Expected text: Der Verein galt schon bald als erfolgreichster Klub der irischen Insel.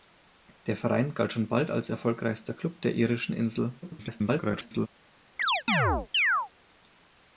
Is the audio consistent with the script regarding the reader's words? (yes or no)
no